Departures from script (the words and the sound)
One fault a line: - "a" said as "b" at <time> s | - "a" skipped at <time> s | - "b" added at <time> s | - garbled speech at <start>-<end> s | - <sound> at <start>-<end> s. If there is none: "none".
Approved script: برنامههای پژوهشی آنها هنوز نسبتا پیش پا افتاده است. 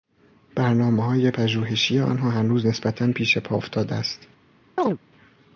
- chirp at 4.8-5.0 s